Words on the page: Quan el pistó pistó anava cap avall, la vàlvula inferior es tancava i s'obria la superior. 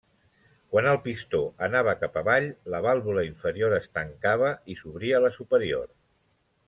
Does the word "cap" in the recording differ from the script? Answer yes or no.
no